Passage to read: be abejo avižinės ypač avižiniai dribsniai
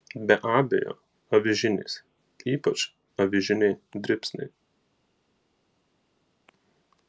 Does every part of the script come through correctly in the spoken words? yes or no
yes